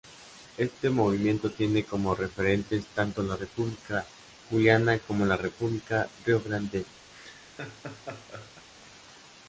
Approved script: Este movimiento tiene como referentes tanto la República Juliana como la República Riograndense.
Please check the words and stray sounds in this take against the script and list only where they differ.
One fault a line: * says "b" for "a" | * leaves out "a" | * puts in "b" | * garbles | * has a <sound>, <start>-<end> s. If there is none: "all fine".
* has a laugh, 7.1-8.7 s